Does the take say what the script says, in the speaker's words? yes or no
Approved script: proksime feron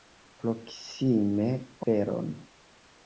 yes